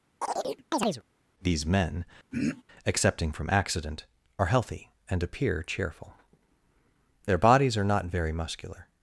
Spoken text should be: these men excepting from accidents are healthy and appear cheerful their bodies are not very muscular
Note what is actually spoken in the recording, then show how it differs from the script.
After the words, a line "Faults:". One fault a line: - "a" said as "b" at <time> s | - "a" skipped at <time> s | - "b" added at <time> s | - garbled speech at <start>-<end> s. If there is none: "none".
these men excepting from accident are healthy and appear cheerful their bodies are not very muscular
Faults:
- "accidents" said as "accident" at 3.5 s